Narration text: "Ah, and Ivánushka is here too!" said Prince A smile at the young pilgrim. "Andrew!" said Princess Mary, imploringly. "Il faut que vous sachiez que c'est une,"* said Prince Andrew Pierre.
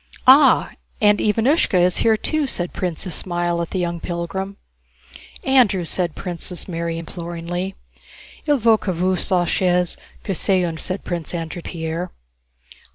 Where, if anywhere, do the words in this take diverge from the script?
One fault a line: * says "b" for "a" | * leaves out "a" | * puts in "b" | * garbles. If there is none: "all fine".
all fine